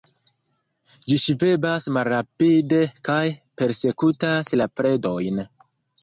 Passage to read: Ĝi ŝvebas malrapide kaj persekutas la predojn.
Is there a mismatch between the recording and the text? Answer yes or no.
no